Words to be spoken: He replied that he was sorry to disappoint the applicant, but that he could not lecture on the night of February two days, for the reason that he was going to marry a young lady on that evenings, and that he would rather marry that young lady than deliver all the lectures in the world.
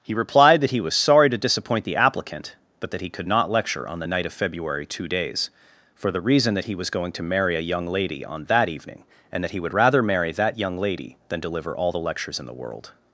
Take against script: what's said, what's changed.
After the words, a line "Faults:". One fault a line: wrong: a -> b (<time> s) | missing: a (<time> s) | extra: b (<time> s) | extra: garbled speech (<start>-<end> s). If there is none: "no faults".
He replied that he was sorry to disappoint the applicant, but that he could not lecture on the night of February two days, for the reason that he was going to marry a young lady on that evening, and that he would rather marry that young lady than deliver all the lectures in the world.
Faults:
wrong: evenings -> evening (8.7 s)